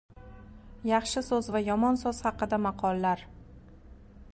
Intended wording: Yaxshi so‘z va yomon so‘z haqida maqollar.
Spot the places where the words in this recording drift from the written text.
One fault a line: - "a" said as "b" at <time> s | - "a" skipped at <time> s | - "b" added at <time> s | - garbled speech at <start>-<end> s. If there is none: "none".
none